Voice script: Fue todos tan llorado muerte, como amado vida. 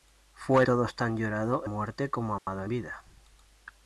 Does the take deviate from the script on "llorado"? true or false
false